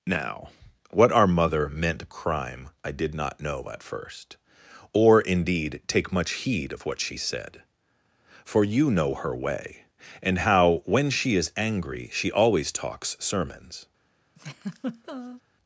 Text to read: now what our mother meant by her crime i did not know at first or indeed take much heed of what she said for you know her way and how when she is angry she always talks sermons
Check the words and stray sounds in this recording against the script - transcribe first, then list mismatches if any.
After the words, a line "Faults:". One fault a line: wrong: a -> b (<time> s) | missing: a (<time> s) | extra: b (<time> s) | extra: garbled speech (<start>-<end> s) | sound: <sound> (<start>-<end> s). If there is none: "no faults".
now what our mother meant crime i did not know at first or indeed take much heed of what she said for you know her way and how when she is angry she always talks sermons
Faults:
missing: by her (2.1 s)
sound: laugh (14.4-15.4 s)